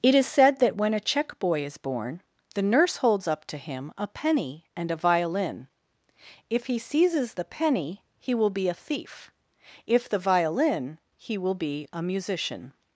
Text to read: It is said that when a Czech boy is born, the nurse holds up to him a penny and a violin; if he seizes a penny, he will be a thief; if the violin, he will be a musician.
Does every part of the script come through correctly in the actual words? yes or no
no